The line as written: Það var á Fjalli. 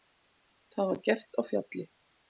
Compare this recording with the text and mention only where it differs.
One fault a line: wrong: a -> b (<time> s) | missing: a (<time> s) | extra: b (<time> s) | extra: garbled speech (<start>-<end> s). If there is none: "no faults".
extra: gert (1.1 s)